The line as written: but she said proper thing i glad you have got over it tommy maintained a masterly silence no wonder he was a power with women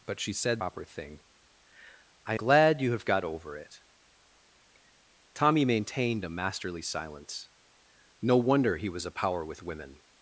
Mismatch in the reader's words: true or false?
false